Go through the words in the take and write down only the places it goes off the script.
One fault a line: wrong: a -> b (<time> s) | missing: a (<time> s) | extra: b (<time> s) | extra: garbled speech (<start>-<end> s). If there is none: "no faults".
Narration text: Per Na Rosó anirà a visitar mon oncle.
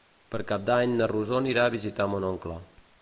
extra: Cap d'Any (0.5 s)